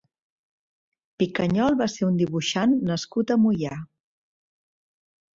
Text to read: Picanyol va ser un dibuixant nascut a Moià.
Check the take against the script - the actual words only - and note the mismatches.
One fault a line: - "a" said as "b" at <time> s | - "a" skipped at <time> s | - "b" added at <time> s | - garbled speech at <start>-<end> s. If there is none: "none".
none